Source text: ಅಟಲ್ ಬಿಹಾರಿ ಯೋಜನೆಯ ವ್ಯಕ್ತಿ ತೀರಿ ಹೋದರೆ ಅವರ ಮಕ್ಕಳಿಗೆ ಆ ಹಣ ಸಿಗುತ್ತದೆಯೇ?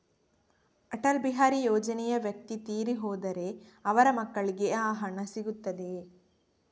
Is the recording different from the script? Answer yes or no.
no